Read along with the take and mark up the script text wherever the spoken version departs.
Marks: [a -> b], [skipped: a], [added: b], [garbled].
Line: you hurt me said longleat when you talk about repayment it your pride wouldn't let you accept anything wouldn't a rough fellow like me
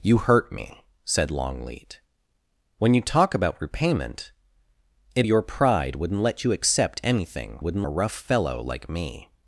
you hurt me said longleat when you talk about repayment it your pride wouldn't let you accept anything wouldn't a rough fellow like me